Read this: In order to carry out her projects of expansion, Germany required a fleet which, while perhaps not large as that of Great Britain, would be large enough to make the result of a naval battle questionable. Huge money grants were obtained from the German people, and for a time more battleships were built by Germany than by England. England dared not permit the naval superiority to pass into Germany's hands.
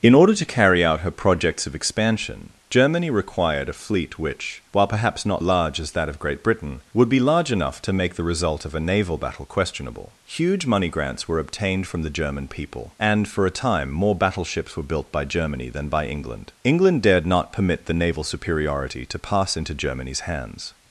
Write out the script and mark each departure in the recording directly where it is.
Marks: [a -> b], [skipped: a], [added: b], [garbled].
In order to carry out her projects of expansion, Germany required a fleet which, while perhaps not large as that of Great Britain, would be large enough to make the result of a naval battle questionable. Huge money grants were obtained from the German people, and for a time more battleships were built by Germany than by England. England dared not permit the naval superiority to pass into Germany's hands.